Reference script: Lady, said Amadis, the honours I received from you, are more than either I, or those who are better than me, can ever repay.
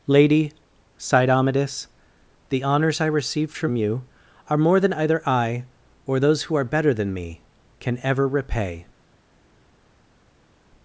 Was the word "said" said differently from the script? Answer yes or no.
yes